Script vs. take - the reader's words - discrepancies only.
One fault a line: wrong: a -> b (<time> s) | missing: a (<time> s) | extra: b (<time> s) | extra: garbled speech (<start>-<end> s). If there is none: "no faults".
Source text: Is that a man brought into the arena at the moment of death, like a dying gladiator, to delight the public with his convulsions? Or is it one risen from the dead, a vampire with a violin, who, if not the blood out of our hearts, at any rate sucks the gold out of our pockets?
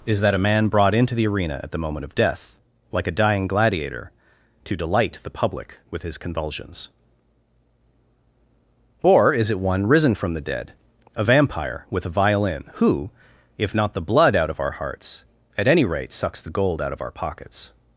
no faults